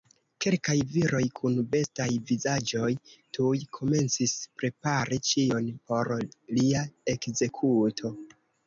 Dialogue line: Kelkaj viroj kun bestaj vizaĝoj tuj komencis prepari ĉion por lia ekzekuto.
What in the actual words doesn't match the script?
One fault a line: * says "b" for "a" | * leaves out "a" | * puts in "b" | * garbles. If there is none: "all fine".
all fine